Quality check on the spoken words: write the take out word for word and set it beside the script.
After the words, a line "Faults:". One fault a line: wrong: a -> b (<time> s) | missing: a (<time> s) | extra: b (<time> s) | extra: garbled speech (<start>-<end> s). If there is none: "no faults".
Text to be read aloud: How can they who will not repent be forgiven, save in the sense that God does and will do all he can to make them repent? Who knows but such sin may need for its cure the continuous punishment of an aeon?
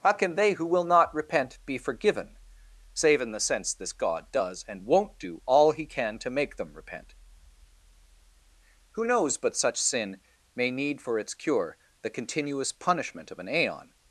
How can they who will not repent be forgiven, save in the sense this God does and won't do all he can to make them repent? Who knows but such sin may need for its cure the continuous punishment of an aeon?
Faults:
wrong: that -> this (3.7 s)
wrong: will -> won't (4.8 s)